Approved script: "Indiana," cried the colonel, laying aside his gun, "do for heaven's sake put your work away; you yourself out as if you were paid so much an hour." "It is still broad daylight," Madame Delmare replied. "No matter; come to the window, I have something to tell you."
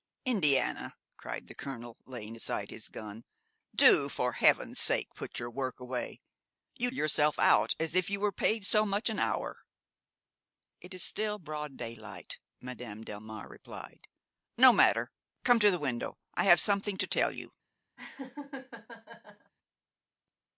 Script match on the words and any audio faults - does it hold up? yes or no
no